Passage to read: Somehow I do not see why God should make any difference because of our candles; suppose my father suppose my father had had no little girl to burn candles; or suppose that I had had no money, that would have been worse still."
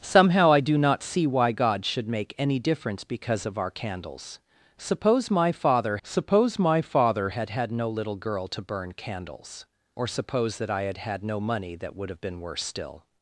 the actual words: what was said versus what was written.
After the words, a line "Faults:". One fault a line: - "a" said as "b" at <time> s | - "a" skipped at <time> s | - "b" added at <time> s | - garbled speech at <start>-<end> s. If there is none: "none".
Somehow I do not see why God should make any difference because of our candles; suppose my father suppose my father had had no little girl to burn candles; or suppose that I had had no money, that would have been worse still."
Faults:
none